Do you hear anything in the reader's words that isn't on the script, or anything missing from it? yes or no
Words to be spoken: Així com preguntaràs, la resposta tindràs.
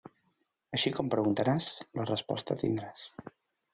no